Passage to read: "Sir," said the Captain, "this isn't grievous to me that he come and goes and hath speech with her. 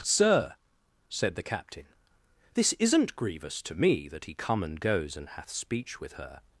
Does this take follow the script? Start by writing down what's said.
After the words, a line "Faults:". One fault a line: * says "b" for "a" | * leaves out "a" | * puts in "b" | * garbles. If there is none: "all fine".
"Sir," said the Captain, "this isn't grievous to me that he come and goes and hath speech with her.
Faults:
all fine